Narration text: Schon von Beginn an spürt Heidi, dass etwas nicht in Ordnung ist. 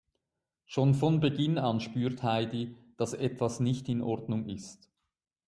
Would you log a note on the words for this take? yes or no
no